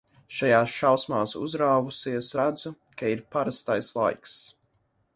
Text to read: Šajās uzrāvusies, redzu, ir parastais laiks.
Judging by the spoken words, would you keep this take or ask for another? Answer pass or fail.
fail